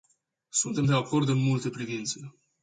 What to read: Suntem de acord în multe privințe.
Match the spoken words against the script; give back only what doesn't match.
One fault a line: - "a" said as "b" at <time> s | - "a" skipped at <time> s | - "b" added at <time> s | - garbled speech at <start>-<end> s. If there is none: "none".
none